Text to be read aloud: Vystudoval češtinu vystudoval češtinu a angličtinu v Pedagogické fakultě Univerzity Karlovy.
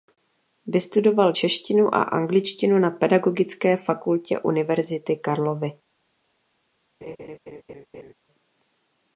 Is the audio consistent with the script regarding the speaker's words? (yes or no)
no